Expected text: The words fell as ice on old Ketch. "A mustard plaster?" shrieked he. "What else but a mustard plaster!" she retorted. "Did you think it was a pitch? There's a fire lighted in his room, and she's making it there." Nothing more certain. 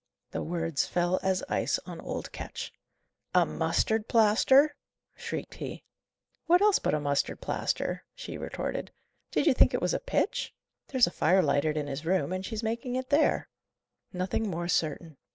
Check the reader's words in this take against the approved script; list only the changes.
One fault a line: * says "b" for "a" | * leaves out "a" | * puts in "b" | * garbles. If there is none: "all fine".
all fine